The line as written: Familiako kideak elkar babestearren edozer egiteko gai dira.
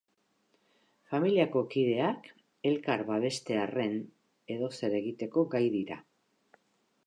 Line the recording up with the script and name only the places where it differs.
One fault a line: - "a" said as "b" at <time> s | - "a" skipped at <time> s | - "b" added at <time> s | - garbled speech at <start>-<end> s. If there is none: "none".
none